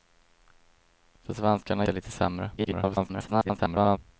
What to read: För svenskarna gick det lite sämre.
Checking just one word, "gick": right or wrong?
wrong